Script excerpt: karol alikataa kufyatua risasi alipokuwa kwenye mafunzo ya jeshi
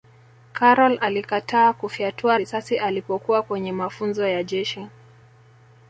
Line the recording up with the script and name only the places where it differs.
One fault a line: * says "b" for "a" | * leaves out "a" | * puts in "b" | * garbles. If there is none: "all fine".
all fine